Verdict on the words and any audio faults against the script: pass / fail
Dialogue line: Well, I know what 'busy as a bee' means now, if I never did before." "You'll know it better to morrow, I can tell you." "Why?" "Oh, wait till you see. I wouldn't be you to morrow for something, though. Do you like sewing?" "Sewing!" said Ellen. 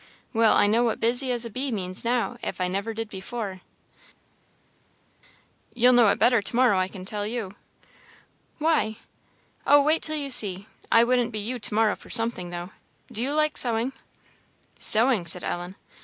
pass